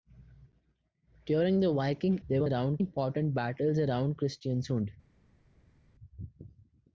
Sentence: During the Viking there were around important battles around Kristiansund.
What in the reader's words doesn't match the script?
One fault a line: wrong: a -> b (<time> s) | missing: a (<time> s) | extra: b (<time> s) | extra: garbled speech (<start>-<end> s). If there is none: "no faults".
no faults